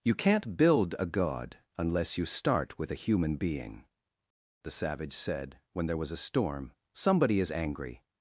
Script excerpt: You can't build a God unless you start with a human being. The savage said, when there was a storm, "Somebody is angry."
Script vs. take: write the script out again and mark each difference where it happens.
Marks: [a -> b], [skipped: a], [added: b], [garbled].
You can't build a God unless you start with a human being. The savage said, when there was a storm, "Somebody is angry."